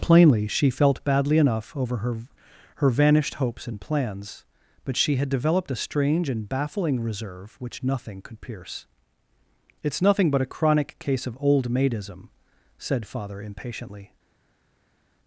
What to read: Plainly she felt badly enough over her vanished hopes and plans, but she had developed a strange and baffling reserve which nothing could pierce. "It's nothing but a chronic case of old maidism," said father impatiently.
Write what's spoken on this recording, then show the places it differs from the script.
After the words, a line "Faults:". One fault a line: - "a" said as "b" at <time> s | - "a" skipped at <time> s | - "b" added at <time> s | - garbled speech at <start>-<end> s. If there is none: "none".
Plainly she felt badly enough over her her vanished hopes and plans, but she had developed a strange and baffling reserve which nothing could pierce. "It's nothing but a chronic case of old maidism," said father impatiently.
Faults:
- "her" added at 2.7 s